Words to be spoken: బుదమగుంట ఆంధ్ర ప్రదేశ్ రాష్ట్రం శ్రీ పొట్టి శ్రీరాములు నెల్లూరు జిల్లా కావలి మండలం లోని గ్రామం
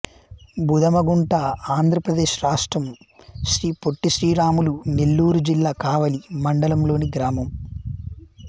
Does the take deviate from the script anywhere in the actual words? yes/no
no